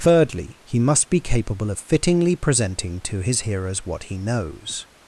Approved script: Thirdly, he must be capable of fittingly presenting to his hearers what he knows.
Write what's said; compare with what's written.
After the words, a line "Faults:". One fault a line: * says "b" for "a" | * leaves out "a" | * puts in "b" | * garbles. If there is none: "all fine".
Thirdly, he must be capable of fittingly presenting to his hearers what he knows.
Faults:
all fine